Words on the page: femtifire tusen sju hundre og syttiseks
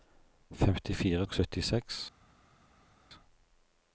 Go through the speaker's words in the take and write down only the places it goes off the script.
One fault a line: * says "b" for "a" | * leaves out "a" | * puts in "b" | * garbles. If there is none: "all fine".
* leaves out "tusen sju hundre"